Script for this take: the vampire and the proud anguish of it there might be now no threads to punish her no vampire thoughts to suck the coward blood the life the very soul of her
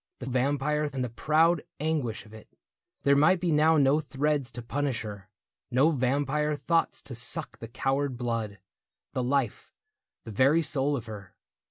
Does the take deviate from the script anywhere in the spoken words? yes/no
no